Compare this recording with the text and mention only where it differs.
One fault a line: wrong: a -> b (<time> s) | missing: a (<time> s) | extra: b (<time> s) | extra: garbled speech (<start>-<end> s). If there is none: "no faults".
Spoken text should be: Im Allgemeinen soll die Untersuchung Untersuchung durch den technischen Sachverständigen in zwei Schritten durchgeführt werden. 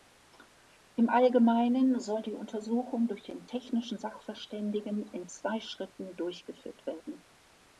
missing: Untersuchung (3.1 s)